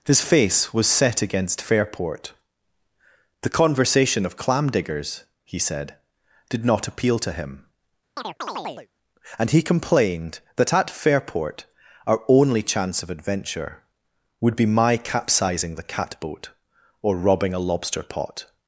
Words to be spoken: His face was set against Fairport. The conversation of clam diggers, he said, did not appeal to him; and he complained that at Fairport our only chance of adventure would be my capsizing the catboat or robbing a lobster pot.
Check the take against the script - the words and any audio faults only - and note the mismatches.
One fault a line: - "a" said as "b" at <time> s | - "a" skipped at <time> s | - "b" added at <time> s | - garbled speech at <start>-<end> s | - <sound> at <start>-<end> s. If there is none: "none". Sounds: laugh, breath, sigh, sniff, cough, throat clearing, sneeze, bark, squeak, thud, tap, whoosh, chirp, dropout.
- chirp at 8.2-8.9 s